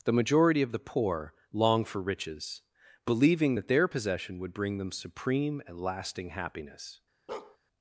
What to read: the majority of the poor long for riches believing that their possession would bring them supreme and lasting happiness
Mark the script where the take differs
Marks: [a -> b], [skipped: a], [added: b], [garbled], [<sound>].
the majority of the poor long for riches believing that their possession would bring them supreme and lasting happiness [bark]